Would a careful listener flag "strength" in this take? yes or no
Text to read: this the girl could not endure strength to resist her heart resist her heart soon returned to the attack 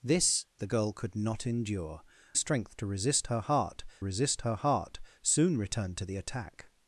no